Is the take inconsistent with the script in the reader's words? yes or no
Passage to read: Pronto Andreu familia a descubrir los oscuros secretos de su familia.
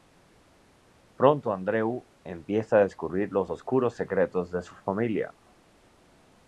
yes